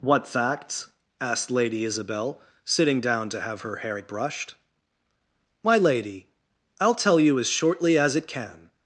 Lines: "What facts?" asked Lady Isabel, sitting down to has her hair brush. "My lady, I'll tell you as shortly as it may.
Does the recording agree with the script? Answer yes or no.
no